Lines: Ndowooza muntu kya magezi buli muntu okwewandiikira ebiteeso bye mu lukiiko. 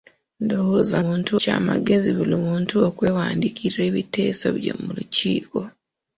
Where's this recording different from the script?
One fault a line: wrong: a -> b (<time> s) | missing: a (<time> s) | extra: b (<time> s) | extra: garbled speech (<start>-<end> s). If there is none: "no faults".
no faults